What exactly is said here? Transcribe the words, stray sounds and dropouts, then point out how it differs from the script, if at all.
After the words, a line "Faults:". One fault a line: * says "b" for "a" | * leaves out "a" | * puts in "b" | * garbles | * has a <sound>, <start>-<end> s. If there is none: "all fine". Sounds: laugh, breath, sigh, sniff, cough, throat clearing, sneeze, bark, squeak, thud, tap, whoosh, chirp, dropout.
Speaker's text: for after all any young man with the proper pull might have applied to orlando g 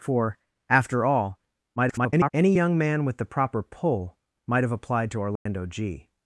for after all [garbled] any young man with the proper pull might have applied to orlando g
Faults:
* garbles
* has a dropout, 5.4-5.5 s